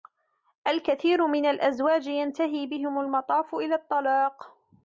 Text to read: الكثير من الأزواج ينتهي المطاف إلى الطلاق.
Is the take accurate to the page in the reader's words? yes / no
no